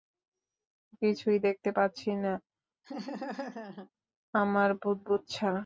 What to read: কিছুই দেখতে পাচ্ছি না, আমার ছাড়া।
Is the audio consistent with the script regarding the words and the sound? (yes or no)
no